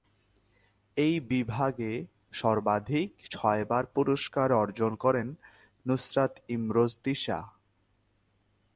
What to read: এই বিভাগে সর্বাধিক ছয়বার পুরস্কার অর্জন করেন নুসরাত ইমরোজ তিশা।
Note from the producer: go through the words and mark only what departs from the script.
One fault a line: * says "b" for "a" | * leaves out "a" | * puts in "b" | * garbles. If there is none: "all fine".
all fine